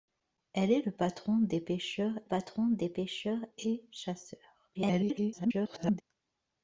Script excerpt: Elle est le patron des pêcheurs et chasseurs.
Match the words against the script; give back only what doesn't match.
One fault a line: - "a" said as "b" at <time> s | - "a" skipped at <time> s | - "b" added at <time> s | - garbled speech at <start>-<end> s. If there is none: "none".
- "patron des pêcheurs" added at 2.2 s
- garbled speech at 4.7-6.0 s